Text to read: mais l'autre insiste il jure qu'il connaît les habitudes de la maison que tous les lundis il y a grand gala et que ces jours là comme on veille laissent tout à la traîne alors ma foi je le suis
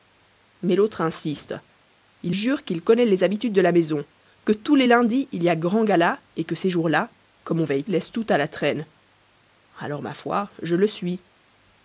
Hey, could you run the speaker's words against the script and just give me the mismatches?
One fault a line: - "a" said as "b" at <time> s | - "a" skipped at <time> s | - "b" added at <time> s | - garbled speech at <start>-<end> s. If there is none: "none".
none